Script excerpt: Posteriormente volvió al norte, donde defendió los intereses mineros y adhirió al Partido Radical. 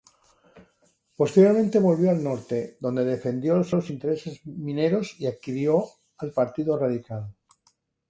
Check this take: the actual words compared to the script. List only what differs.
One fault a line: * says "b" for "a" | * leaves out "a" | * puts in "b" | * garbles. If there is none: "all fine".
* puts in "los"